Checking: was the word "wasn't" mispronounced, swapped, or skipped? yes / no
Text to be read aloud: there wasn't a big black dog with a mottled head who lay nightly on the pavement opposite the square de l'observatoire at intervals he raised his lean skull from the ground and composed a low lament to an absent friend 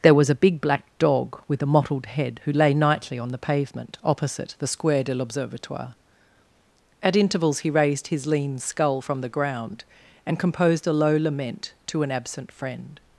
yes